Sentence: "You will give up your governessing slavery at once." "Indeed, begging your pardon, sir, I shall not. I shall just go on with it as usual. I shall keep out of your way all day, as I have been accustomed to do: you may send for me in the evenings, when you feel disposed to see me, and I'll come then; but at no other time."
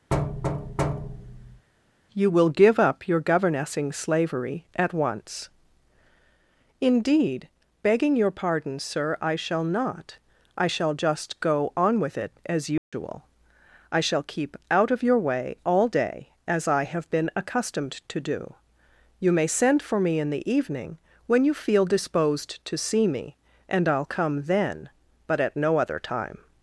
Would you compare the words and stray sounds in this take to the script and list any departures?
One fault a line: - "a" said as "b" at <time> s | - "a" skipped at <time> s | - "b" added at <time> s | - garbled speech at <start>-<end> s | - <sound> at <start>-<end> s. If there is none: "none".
- thud at 0.1-1.7 s
- dropout at 12.8-12.9 s
- "evenings" said as "evening" at 20.5 s